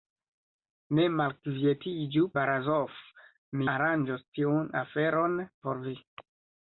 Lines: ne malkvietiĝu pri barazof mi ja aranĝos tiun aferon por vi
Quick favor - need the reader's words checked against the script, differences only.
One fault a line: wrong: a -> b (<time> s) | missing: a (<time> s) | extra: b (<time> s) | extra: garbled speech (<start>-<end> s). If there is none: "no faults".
missing: pri (2.2 s)
missing: ja (3.7 s)